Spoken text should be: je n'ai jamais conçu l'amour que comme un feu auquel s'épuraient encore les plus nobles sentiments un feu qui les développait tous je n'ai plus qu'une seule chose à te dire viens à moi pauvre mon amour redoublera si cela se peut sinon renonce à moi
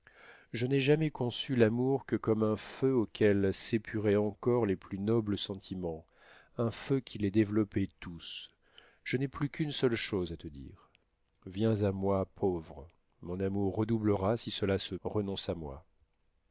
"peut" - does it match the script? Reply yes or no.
no